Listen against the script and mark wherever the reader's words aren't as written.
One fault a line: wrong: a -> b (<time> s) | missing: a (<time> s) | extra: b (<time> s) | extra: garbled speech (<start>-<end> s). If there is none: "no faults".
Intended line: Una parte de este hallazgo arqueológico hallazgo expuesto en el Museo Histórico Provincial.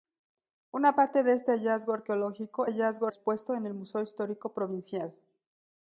no faults